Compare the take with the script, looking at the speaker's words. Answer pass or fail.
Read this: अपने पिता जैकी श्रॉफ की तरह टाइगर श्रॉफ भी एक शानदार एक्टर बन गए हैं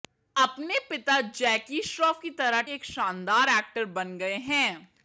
fail